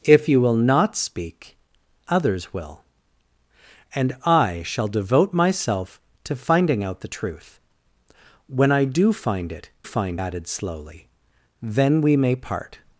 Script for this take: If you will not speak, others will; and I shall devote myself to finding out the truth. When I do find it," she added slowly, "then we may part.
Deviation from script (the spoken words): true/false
true